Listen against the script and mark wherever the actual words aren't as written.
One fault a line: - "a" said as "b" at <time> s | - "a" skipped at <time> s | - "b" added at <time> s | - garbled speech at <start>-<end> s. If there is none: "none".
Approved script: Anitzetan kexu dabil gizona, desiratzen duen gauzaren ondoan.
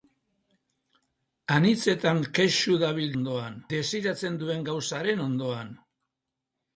- "gizona" said as "ondoan" at 3.2 s